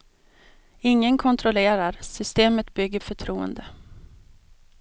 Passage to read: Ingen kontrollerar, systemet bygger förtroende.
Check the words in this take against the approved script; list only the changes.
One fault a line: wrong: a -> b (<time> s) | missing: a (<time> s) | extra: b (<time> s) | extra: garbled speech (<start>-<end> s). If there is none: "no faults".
no faults